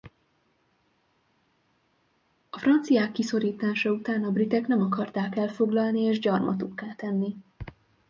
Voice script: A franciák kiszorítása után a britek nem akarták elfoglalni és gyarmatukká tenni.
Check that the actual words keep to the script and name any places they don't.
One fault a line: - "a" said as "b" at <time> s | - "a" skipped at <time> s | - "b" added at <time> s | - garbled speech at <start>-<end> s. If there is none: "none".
none